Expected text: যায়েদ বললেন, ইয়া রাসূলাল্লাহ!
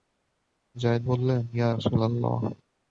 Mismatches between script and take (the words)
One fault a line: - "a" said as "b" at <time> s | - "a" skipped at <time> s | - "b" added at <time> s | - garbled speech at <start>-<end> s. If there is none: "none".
none